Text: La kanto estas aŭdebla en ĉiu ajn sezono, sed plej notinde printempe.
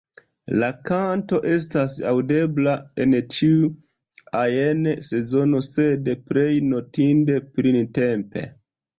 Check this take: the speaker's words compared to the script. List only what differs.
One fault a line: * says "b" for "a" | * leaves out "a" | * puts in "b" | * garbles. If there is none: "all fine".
all fine